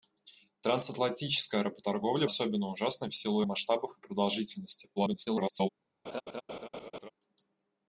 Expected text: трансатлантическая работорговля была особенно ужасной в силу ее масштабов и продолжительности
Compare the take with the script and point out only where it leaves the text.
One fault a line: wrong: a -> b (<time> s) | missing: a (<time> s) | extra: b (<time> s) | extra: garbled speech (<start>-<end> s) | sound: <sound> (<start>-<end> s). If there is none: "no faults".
missing: была (2.3 s)
missing: ее (3.4 s)
extra: garbled speech (5.0-5.7 s)
sound: laugh (6.0-7.1 s)